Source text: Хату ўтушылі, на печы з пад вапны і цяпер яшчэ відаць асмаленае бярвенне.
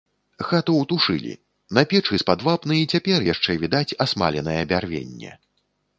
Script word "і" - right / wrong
right